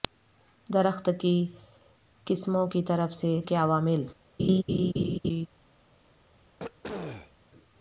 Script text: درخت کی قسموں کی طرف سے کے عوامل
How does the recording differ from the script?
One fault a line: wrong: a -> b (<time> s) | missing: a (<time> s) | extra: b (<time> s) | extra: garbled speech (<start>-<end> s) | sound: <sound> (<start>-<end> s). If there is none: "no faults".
sound: laugh (4.4-5.5 s)
sound: throat clearing (6.6-7.3 s)